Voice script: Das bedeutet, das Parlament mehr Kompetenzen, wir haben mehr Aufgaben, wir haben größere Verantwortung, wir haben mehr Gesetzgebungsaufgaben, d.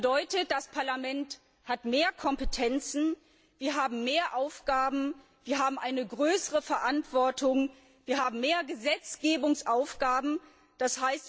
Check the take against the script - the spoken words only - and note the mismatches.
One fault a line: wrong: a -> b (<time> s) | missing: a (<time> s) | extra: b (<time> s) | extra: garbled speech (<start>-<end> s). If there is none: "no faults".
extra: hat (1.7 s)
extra: eine (5.8 s)